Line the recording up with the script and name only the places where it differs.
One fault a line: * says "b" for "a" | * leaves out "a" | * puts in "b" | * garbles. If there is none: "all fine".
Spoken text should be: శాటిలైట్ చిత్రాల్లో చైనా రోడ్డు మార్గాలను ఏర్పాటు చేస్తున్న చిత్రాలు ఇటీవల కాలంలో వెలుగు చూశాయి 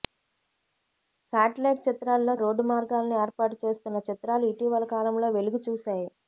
* leaves out "చైనా"